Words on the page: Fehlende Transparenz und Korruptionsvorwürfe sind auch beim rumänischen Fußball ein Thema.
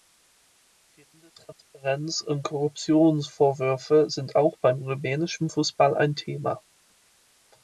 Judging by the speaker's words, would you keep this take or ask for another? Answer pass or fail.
pass